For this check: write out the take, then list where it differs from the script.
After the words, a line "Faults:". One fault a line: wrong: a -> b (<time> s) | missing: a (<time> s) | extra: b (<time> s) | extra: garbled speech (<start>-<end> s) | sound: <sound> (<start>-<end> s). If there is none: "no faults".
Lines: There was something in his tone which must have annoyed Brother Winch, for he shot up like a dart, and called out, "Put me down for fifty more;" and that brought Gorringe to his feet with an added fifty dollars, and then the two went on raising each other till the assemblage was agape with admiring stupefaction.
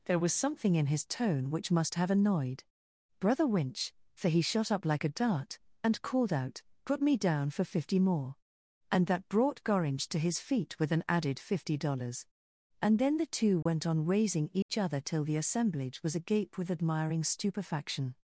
There was something in his tone which must have annoyed Brother Winch, for he shot up like a dart, and called out, "Put me down for fifty more;" and that brought Gorringe to his feet with an added fifty dollars, and then the two went on raising each other till the assemblage was agape with admiring stupefaction.
Faults:
sound: dropout (13.6-13.7 s)
sound: dropout (14.6-14.7 s)